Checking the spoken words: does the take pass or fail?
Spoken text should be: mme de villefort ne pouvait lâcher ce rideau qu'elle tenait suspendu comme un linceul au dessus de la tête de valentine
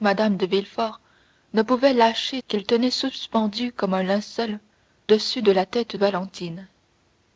fail